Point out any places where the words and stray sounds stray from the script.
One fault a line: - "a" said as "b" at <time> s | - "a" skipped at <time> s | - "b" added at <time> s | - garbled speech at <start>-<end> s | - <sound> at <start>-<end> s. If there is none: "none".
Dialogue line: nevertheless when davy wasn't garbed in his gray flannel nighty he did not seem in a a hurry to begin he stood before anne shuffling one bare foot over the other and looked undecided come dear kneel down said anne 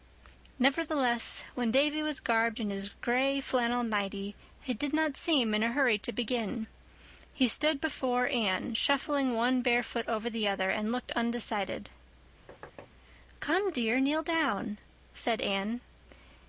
- "wasn't" said as "was" at 2.0 s
- "a" skipped at 5.7 s
- thud at 12.5-12.9 s